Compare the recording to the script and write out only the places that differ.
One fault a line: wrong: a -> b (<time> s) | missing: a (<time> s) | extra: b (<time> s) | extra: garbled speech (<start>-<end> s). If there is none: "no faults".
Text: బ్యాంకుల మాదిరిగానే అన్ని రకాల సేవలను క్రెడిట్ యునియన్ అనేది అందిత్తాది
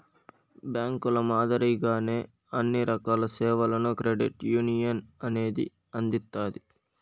no faults